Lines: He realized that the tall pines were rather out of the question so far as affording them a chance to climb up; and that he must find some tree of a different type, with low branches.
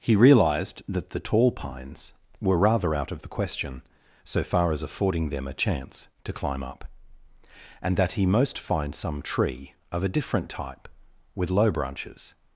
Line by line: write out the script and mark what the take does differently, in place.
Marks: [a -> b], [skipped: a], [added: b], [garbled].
He realized that the tall pines were rather out of the question so far as affording them a chance to climb up; and that he [must -> most] find some tree of a different type, with low branches.